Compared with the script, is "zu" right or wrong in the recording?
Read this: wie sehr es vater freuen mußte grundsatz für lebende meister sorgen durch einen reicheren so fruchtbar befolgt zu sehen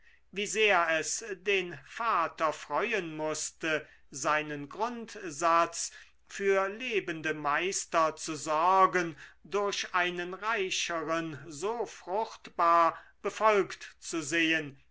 right